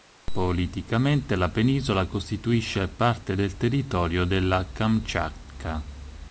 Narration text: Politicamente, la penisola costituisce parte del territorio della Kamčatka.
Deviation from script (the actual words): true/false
false